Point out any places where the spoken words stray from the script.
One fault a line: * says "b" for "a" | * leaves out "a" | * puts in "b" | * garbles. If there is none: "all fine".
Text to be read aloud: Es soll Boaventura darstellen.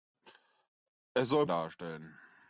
* leaves out "Boaventura"